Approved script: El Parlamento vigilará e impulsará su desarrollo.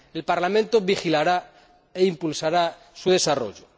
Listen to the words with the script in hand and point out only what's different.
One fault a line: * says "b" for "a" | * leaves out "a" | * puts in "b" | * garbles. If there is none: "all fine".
all fine